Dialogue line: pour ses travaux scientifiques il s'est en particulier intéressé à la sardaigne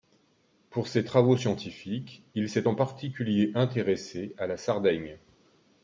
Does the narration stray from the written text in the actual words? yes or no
no